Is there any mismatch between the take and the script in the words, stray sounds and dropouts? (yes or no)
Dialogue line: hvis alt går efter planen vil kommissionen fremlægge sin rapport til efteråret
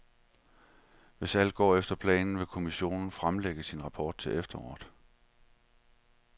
no